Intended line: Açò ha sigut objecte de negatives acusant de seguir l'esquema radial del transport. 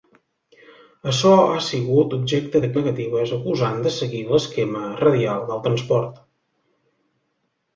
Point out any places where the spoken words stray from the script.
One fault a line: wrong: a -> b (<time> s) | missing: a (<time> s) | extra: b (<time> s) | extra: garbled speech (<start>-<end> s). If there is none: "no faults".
no faults